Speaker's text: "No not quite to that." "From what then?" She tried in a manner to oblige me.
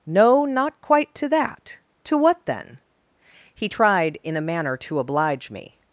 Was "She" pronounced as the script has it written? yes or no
no